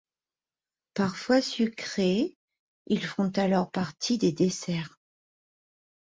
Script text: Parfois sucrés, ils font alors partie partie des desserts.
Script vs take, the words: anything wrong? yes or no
yes